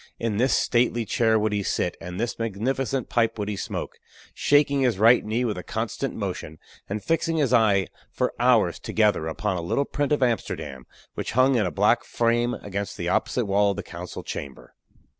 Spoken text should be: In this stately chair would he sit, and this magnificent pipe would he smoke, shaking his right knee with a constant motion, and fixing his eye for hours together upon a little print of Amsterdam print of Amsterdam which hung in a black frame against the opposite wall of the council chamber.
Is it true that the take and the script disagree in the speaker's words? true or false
true